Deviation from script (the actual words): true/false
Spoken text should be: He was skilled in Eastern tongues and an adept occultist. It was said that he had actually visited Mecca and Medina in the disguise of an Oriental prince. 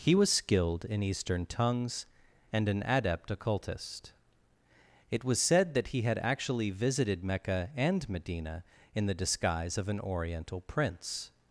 false